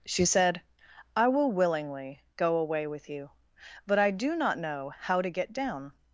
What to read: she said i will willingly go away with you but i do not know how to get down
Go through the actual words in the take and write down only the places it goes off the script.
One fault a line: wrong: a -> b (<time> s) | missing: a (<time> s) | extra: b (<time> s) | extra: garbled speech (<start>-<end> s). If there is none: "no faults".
no faults